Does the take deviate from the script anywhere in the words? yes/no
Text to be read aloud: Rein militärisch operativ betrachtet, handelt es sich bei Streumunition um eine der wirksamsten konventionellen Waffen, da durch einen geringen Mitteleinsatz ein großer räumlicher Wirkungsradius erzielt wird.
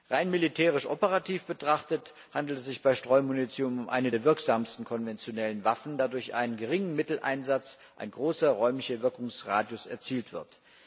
no